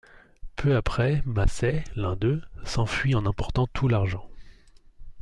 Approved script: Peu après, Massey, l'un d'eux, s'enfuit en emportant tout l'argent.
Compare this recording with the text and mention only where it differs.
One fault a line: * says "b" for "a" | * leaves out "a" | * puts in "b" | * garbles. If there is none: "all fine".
all fine